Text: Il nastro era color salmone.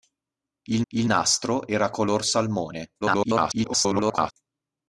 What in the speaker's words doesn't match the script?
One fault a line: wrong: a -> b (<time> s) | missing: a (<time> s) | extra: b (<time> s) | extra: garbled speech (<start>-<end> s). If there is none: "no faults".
extra: il (0.9 s)
extra: garbled speech (3.0-4.3 s)